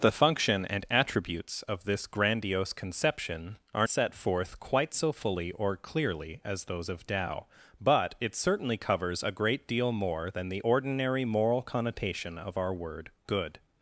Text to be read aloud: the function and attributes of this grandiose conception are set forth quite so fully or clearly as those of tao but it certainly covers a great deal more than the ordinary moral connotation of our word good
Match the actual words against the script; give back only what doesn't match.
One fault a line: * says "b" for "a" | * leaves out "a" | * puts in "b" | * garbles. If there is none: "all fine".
all fine